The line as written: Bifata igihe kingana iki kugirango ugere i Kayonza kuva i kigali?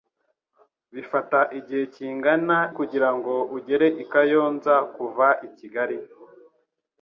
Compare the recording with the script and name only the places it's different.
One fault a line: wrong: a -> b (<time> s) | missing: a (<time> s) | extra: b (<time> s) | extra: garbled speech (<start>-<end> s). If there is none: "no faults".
missing: iki (2.6 s)